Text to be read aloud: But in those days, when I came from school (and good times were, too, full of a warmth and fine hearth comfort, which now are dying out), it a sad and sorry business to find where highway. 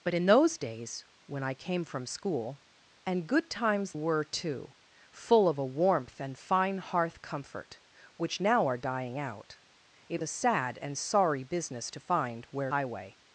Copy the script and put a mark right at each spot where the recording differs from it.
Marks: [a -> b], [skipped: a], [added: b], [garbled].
But in those days, when I came from school (and good times were, too, full of a warmth and fine hearth comfort, which now are dying out), it a sad and sorry business to find where highway.